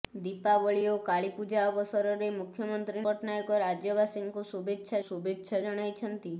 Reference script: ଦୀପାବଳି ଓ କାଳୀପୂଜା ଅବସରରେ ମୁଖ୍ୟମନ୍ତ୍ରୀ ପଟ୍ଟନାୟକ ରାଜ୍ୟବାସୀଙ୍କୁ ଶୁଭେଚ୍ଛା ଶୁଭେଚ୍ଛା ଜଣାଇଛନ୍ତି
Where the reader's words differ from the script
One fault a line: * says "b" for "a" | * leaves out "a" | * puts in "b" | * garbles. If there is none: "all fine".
all fine